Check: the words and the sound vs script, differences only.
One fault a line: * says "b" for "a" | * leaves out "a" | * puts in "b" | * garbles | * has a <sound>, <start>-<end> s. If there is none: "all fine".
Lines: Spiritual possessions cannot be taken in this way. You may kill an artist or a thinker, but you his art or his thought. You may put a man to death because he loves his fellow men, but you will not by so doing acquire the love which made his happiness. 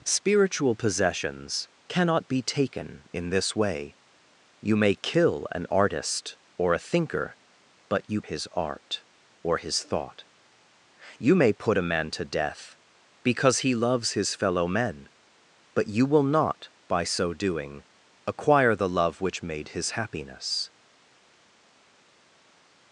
all fine